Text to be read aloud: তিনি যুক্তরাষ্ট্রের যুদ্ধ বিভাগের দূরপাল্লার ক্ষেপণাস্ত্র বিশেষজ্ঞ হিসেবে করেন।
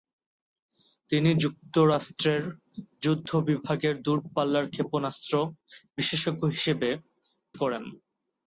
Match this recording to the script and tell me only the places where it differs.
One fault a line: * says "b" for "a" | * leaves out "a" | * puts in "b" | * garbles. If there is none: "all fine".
all fine